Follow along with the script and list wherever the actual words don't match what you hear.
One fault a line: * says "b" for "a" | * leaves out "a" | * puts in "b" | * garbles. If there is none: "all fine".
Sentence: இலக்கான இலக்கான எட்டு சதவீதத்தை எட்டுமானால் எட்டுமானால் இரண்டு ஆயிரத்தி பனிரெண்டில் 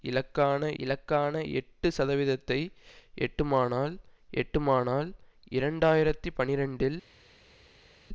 all fine